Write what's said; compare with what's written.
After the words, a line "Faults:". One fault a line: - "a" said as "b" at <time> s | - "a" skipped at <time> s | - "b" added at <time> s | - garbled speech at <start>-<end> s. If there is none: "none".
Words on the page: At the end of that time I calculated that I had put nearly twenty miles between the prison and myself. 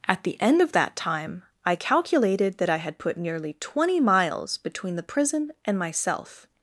At the end of that time I calculated that I had put nearly twenty miles between the prison and myself.
Faults:
none